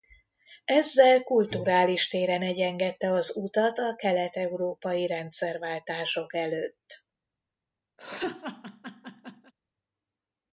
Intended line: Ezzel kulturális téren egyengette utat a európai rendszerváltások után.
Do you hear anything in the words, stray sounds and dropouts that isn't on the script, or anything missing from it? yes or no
yes